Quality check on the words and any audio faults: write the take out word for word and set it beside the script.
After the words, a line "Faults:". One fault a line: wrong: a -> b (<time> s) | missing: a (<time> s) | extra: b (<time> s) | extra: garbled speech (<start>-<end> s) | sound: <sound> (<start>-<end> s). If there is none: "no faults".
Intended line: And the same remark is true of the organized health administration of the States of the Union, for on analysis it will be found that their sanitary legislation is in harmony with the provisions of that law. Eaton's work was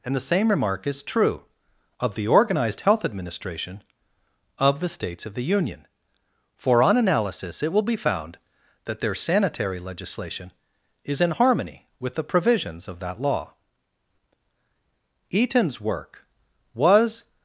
And the same remark is true of the organized health administration of the States of the Union, for on analysis it will be found that their sanitary legislation is in harmony with the provisions of that law. Eaton's work was
Faults:
no faults